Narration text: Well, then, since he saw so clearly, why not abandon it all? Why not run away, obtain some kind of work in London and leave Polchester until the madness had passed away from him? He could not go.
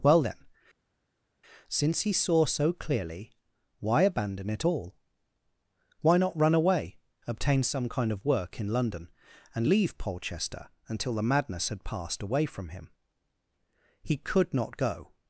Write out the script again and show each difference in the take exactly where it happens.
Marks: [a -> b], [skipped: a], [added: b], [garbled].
Well, then, since he saw so clearly, why [skipped: not] abandon it all? Why not run away, obtain some kind of work in London and leave Polchester until the madness had passed away from him? He could not go.